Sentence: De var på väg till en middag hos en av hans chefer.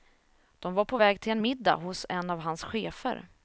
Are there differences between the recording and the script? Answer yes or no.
no